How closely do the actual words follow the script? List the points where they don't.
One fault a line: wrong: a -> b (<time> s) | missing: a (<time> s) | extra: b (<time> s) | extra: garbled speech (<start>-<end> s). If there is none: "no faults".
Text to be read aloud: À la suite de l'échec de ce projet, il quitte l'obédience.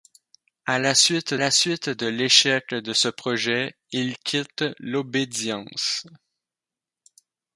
extra: la suite (1.4 s)